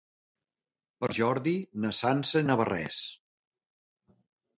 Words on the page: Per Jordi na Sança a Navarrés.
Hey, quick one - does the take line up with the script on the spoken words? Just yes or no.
yes